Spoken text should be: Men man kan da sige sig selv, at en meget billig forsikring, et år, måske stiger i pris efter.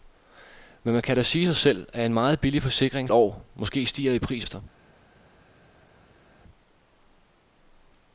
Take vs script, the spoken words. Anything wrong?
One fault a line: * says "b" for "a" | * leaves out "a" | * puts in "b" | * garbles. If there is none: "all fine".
all fine